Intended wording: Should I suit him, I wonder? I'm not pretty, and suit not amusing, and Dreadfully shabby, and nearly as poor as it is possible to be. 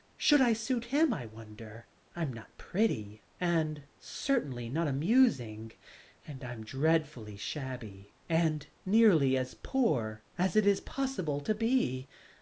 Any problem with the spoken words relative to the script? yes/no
yes